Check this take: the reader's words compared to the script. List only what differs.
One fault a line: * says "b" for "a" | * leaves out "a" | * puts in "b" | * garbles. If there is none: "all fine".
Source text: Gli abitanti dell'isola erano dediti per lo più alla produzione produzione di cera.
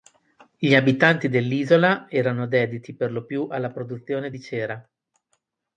* leaves out "produzione"